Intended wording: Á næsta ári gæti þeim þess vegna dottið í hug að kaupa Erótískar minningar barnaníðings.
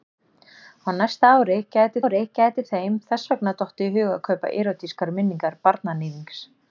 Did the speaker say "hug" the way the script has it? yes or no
yes